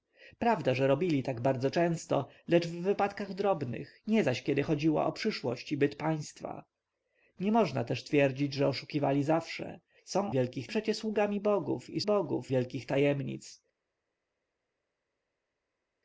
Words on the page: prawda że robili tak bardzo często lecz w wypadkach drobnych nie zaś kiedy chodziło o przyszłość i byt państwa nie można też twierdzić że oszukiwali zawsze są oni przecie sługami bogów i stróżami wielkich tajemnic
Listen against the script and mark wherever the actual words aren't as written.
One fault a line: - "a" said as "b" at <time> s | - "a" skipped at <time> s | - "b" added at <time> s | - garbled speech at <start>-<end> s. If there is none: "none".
- "oni" said as "wielkich" at 10.3 s
- "stróżami" said as "bogów" at 12.0 s